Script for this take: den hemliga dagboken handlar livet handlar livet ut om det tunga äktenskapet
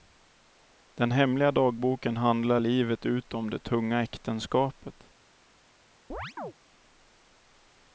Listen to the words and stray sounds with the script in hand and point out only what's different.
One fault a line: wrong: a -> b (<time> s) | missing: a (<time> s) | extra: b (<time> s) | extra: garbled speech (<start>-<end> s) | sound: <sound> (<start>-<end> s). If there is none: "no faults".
missing: handlar livet (3.1 s)
sound: chirp (6.1-6.5 s)